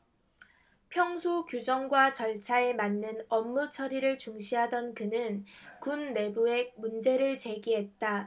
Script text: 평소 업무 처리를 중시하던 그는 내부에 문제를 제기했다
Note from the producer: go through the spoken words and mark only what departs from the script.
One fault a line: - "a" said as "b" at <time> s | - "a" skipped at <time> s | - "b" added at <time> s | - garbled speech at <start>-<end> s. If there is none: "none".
- "규정과 절차에 맞는" added at 1.4 s
- "군" added at 5.8 s